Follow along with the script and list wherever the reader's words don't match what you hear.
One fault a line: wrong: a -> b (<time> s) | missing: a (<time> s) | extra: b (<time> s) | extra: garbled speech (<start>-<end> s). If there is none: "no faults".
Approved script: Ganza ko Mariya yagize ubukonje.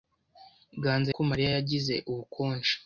no faults